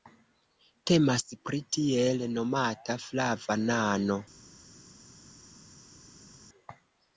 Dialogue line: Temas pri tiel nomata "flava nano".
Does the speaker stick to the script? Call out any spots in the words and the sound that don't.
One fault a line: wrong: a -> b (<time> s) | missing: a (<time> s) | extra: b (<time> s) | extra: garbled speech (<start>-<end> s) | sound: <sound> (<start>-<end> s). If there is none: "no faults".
no faults